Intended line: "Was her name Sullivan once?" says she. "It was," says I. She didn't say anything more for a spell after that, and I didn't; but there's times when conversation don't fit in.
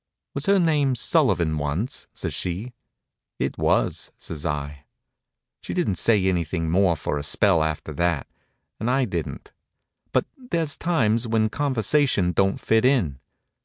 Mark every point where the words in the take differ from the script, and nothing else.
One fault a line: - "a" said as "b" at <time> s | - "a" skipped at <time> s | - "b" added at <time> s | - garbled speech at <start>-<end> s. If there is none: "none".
none